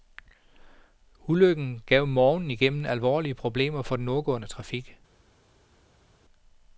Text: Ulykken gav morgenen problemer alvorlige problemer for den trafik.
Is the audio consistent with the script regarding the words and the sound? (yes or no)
no